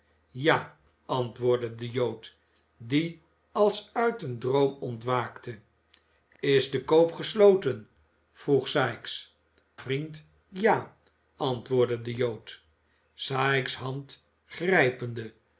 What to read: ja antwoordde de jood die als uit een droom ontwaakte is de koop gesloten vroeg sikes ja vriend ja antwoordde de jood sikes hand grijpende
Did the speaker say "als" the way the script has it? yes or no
yes